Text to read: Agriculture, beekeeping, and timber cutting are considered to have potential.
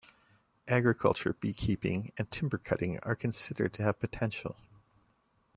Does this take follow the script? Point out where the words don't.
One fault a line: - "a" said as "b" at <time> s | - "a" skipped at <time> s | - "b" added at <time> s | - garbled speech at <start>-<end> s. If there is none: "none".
none